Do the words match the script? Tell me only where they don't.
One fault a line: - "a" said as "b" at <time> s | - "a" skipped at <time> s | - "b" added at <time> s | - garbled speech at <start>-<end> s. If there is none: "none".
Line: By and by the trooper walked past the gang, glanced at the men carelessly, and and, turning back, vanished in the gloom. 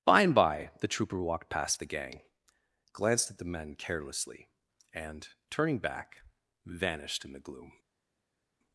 - "and" skipped at 5.3 s